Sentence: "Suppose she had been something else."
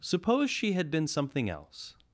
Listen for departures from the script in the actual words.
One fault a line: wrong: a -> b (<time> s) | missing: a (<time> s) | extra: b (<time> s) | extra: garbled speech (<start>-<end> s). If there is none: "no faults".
no faults